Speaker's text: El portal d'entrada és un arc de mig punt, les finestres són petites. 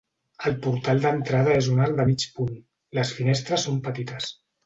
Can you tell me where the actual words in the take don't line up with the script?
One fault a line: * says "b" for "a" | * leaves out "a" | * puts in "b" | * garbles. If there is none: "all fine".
all fine